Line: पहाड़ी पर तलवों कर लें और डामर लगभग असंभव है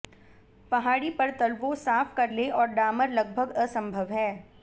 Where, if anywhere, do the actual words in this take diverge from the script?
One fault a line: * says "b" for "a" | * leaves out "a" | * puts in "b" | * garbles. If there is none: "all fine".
* puts in "साफ"